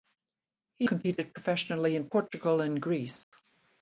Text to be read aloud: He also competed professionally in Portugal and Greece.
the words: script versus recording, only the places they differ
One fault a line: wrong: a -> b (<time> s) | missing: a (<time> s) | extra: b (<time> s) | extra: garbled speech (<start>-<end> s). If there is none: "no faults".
missing: also (0.9 s)